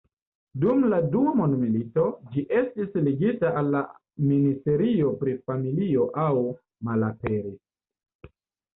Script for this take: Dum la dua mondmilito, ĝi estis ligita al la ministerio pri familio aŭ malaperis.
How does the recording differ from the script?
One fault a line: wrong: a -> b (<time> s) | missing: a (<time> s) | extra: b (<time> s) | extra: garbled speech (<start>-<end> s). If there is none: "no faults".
no faults